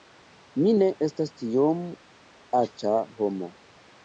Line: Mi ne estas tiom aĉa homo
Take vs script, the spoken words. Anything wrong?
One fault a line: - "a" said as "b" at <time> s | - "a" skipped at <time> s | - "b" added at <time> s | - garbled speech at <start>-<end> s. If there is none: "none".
none